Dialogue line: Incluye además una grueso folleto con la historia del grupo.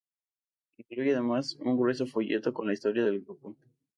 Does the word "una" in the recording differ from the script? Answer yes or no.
yes